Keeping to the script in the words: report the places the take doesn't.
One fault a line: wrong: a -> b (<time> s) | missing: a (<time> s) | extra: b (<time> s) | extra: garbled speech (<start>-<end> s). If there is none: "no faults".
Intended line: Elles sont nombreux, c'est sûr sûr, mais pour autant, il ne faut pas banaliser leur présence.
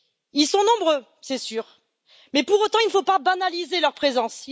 wrong: Elles -> Ils (0.3 s)
missing: sûr (1.8 s)